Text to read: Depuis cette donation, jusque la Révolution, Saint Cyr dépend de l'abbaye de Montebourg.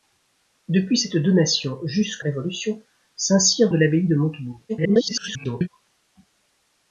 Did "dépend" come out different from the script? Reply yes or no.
yes